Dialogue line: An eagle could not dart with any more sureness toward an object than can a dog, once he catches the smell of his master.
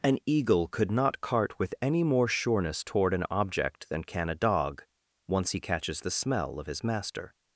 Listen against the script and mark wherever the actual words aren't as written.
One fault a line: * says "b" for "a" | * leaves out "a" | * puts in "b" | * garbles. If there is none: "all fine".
* says "cart" for "dart"